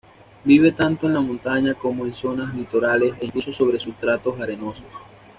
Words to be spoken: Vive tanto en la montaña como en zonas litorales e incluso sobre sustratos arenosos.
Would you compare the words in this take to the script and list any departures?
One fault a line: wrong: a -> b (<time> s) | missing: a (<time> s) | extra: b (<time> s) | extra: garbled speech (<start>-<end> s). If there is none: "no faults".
no faults